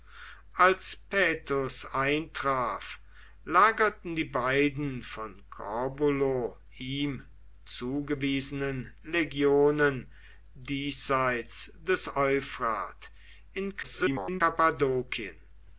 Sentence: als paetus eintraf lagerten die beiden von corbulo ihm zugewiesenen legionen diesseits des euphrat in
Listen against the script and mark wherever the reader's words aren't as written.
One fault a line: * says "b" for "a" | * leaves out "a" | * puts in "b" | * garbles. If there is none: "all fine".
* garbles